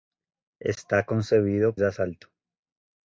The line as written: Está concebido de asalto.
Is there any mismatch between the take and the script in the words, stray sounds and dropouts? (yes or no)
no